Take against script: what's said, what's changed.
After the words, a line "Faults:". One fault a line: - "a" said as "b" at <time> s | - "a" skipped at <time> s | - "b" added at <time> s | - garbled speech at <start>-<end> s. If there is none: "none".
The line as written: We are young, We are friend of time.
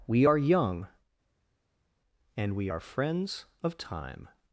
We are young, And we are friends of time.
Faults:
- "And" added at 2.4 s
- "friend" said as "friends" at 2.8 s